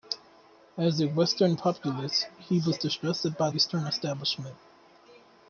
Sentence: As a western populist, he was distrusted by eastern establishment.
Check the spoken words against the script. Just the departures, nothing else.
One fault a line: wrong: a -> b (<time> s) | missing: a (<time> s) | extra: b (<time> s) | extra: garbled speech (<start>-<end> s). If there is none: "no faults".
no faults